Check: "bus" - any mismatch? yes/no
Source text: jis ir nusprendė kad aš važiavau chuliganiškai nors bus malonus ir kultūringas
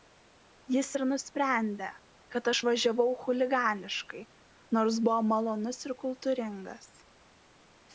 yes